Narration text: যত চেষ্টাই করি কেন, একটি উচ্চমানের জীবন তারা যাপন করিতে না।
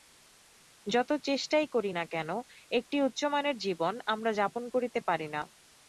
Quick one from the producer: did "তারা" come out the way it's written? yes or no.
no